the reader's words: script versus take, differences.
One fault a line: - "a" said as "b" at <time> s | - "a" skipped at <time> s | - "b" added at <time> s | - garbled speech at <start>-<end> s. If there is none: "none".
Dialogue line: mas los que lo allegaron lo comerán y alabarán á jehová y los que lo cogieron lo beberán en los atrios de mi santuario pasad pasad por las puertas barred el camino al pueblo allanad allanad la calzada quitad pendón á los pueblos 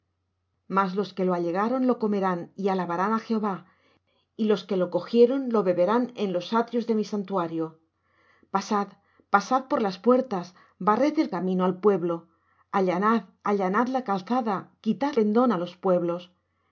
none